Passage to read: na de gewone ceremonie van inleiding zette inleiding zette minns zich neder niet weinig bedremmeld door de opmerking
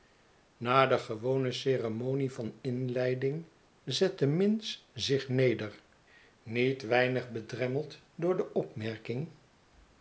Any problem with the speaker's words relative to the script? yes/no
yes